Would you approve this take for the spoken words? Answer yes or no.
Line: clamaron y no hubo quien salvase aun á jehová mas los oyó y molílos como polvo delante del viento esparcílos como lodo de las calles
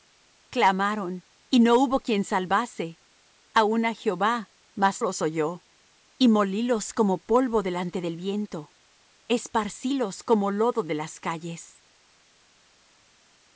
yes